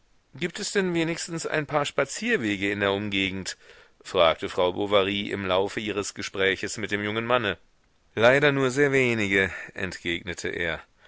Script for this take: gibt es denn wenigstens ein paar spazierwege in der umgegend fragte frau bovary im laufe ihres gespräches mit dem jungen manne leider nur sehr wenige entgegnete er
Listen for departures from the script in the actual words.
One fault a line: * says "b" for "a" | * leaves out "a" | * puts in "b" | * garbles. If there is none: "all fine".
all fine